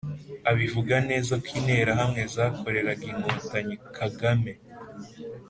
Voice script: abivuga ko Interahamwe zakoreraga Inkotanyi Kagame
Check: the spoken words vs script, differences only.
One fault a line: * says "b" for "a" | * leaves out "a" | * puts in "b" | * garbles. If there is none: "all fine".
* puts in "neza"